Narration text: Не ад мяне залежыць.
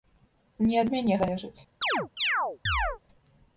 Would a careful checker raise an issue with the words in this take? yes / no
no